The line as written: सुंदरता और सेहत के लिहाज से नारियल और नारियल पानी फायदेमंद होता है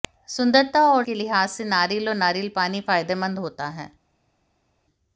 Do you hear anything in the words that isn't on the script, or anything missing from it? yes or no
yes